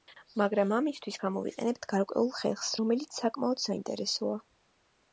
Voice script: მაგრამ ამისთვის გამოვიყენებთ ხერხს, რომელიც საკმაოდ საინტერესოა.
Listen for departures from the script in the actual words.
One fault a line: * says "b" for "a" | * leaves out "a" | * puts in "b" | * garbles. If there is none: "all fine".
* puts in "გარკვეულ"